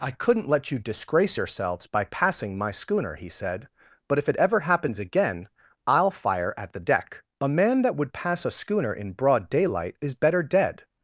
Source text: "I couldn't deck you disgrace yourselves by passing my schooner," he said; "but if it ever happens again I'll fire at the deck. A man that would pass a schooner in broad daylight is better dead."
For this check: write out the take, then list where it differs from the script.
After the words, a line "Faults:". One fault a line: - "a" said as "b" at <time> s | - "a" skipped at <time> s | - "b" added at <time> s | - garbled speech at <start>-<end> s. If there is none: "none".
"I couldn't let you disgrace yourselves by passing my schooner," he said; "but if it ever happens again I'll fire at the deck. A man that would pass a schooner in broad daylight is better dead."
Faults:
- "deck" said as "let" at 0.5 s